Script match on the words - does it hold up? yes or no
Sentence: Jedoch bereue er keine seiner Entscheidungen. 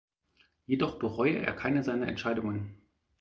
yes